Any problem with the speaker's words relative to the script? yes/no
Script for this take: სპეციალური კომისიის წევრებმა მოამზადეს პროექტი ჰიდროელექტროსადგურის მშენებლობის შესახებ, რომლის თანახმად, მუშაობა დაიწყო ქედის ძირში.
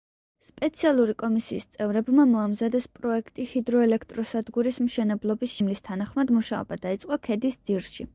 yes